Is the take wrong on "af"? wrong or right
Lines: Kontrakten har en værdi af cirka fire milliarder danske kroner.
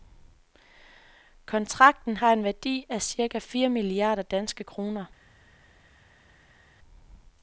right